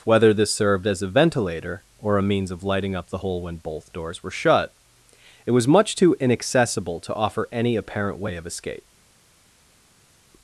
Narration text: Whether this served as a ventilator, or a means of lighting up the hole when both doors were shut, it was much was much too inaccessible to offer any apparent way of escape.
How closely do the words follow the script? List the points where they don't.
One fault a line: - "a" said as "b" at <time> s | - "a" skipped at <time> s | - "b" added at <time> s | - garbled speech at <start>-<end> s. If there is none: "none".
- "was much" skipped at 6.0 s